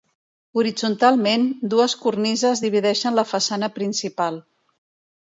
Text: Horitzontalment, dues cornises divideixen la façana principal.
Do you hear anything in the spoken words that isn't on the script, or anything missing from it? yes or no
no